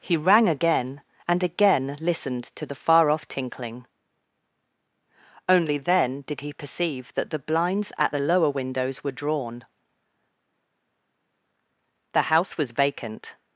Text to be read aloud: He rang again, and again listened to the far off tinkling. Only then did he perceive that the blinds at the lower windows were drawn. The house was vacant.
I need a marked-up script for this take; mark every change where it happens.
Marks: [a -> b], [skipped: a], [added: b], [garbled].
He rang again, and again listened to the far off tinkling. Only then did he perceive that the blinds at the lower windows were drawn. The house was vacant.